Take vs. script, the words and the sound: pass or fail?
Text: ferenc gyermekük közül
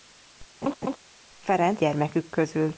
fail